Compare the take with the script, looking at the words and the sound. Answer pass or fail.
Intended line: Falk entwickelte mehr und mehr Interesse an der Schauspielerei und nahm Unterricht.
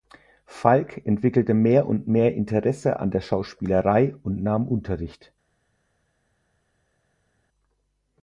pass